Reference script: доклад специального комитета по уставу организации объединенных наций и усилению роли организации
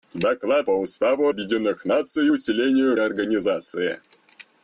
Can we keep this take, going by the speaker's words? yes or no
no